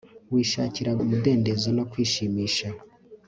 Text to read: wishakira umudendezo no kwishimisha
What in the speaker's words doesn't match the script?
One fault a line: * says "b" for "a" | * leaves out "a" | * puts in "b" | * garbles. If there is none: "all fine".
all fine